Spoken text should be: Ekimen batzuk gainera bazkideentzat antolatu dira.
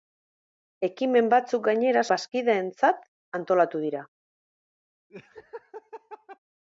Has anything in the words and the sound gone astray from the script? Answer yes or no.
yes